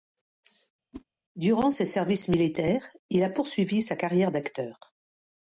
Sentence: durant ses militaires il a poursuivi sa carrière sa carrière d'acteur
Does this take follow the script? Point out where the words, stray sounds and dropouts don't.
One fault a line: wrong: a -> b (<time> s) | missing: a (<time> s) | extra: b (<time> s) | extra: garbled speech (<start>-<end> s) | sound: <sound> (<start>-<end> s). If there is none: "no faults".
sound: whoosh (0.9-1.0 s)
extra: services (1.8 s)
missing: sa carrière (4.3 s)